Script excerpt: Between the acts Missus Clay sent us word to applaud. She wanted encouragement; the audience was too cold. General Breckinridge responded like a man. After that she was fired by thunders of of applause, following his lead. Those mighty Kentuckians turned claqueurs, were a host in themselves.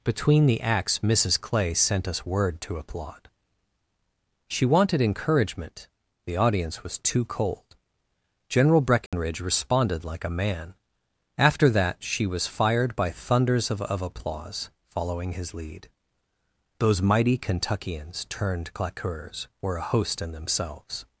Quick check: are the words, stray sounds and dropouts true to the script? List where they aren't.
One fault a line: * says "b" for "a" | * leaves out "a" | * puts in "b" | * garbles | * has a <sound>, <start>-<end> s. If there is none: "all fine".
* has a dropout, 9.1-9.1 s